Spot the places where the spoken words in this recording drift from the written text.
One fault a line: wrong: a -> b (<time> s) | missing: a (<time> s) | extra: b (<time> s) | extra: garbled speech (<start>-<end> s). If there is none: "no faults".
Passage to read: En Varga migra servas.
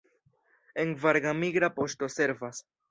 extra: poŝto (1.8 s)